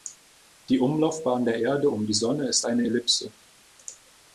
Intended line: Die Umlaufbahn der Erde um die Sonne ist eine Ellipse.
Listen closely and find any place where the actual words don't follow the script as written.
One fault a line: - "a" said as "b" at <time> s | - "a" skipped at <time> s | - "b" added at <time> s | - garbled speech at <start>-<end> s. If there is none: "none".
none